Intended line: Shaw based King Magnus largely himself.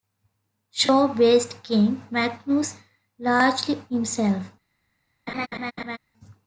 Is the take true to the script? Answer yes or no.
yes